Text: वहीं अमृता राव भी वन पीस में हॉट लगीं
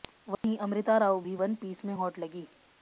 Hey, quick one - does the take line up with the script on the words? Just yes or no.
yes